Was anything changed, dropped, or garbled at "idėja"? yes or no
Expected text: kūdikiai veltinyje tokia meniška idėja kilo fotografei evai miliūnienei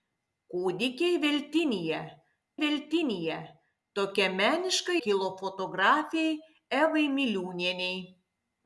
yes